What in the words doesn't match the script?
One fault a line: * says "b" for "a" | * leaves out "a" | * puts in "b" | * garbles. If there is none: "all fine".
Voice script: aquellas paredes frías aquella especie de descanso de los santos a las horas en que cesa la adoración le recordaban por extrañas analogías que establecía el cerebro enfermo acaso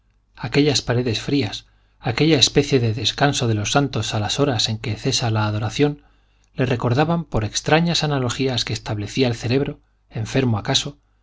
all fine